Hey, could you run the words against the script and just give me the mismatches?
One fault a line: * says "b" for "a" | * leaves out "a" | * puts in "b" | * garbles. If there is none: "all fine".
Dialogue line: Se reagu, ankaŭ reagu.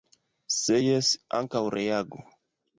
* says "jes" for "reagu"